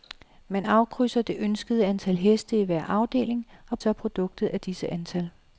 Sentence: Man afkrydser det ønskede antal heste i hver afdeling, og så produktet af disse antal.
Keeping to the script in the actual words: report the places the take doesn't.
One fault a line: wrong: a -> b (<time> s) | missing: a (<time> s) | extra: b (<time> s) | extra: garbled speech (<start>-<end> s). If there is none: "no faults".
no faults